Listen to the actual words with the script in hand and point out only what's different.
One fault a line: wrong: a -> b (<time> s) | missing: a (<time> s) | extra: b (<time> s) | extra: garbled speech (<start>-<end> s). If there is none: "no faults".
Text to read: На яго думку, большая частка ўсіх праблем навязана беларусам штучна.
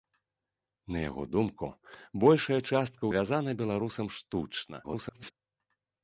missing: ўсіх праблем (3.0 s)
extra: garbled speech (4.8-5.3 s)